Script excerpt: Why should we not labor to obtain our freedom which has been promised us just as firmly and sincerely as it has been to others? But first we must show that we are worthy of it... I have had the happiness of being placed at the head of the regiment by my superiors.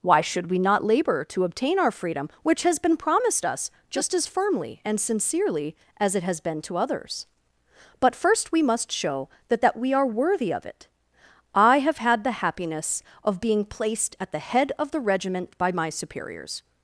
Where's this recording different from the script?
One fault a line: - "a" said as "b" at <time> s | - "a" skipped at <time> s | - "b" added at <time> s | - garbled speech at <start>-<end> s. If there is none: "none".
- "that" added at 9.6 s